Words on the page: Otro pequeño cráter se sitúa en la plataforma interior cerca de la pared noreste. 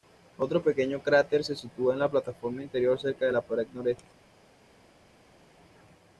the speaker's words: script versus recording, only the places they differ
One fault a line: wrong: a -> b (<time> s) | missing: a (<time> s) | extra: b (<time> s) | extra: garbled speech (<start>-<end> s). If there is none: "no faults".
no faults